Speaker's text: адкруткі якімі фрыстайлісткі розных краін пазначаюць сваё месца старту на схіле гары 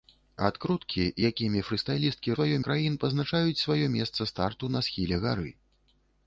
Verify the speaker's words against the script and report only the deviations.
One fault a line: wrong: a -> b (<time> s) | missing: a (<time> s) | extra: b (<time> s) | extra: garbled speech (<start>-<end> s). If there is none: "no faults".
wrong: розных -> сваё (2.3 s)